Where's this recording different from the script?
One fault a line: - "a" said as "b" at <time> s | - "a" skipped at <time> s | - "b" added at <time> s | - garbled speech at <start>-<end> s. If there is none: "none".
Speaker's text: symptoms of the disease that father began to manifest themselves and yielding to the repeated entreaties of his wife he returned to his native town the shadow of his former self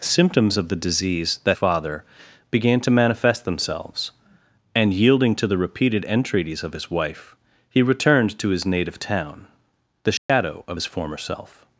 none